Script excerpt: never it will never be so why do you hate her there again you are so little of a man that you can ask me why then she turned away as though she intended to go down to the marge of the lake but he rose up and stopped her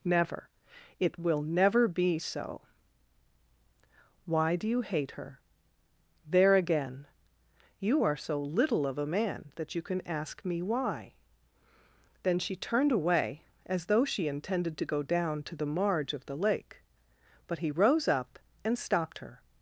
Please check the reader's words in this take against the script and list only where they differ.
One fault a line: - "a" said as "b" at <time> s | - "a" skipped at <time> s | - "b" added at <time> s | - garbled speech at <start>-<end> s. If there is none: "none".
none